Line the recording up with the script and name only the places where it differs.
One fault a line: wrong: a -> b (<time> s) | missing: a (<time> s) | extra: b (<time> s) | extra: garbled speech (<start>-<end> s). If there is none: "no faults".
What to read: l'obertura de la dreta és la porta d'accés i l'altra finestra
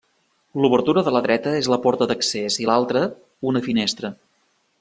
extra: una (3.5 s)